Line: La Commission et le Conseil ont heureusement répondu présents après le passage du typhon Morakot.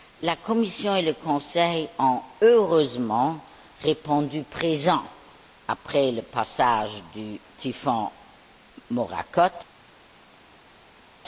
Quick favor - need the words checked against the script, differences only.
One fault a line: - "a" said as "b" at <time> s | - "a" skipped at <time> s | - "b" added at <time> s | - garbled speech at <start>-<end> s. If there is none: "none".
none